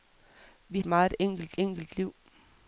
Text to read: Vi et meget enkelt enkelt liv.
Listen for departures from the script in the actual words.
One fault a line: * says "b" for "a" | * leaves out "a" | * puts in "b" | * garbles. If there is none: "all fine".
all fine